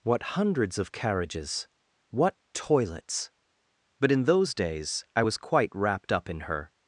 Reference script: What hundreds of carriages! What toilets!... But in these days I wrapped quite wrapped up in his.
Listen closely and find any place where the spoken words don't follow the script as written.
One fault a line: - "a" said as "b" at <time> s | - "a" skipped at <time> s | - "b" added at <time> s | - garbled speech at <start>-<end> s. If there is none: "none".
- "these" said as "those" at 4.2 s
- "wrapped" said as "was" at 5.2 s
- "his" said as "her" at 6.4 s